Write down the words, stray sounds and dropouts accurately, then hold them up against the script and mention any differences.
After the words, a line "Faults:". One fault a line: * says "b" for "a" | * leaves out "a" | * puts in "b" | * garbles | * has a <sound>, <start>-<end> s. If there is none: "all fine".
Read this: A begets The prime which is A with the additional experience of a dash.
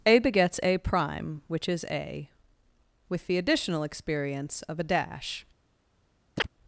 A begets A prime which is A with the additional experience of a dash.
Faults:
* says "A" for "The"
* has a chirp, 6.4-6.5 s